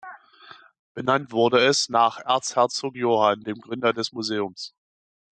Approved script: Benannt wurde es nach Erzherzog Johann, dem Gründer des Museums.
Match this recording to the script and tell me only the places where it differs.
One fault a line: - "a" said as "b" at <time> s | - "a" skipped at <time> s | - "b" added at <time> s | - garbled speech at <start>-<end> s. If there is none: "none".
none